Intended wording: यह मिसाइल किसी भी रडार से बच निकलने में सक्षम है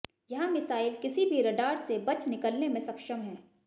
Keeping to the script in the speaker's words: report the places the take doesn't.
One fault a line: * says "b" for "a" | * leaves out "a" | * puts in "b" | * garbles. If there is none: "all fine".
all fine